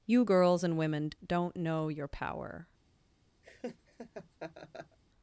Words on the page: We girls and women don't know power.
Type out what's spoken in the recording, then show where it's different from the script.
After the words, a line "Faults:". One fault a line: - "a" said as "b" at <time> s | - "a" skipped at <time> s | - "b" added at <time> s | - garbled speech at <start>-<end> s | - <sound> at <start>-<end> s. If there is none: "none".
You girls and women don't know your power.
Faults:
- "We" said as "You" at 0.1 s
- "your" added at 1.9 s
- laugh at 3.4-5.0 s